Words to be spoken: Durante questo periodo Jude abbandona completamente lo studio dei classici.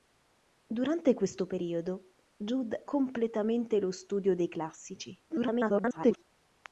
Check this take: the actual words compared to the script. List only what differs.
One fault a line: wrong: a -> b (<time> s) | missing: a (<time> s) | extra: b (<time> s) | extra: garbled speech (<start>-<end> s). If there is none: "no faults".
missing: abbandona (2.9 s)
extra: garbled speech (5.3-6.2 s)